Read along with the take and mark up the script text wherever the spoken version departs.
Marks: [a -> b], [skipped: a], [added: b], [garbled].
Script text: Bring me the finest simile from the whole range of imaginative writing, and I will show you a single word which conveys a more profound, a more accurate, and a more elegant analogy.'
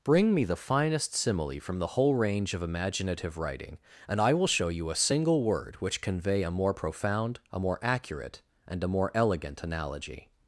Bring me the finest simile from the whole range of imaginative writing, and I will show you a single word which [conveys -> convey] a more profound, a more accurate, and a more elegant analogy.'